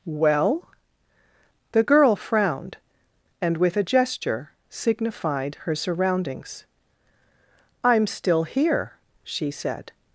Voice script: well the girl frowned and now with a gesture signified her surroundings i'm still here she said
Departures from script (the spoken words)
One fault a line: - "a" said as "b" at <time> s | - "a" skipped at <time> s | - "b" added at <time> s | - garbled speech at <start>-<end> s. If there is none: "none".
- "now" skipped at 3.6 s